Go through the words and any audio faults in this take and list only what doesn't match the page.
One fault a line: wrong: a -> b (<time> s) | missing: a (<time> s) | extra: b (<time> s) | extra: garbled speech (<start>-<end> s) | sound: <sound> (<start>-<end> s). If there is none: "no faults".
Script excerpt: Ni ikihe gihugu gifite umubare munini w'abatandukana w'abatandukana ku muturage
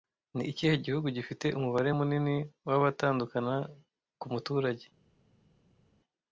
missing: w'abatandukana (3.5 s)